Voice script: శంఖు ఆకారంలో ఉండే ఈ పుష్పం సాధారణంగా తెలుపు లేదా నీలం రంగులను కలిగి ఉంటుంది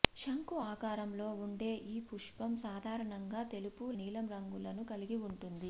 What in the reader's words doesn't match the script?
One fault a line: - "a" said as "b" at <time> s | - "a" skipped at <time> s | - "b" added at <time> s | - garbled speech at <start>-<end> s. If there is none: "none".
- "లేదా" skipped at 3.9 s